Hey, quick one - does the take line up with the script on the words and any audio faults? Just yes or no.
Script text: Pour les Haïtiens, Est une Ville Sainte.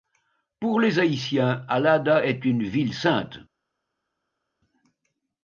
no